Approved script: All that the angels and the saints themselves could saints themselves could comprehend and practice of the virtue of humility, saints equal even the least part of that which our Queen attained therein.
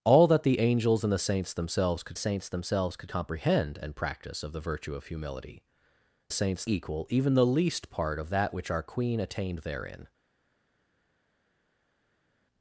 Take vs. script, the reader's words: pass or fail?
pass